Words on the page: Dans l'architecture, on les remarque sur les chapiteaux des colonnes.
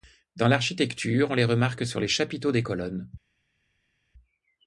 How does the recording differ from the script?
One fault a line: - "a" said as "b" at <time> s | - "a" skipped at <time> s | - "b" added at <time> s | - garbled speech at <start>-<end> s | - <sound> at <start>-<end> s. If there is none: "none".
none